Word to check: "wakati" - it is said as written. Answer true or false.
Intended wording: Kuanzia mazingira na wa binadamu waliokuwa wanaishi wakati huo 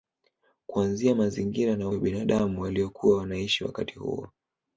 true